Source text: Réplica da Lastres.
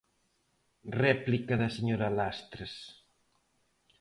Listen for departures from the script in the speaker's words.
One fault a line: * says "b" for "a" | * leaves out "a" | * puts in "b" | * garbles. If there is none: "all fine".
* puts in "señora"